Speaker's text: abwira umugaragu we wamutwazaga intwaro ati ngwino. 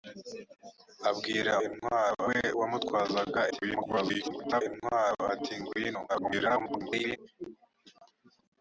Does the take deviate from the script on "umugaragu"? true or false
true